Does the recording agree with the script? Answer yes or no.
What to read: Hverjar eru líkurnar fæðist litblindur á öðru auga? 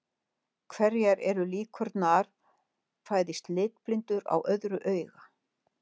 yes